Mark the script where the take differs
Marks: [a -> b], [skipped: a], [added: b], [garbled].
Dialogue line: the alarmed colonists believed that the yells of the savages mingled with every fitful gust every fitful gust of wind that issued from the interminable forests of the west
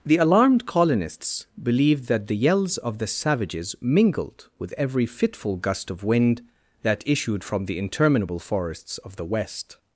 the alarmed colonists believed that the yells of the savages mingled with every fitful gust [skipped: every fitful gust] of wind that issued from the interminable forests of the west